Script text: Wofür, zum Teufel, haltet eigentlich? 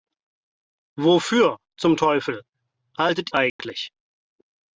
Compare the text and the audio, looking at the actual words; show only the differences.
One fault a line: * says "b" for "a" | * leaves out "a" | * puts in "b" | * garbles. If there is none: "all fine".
all fine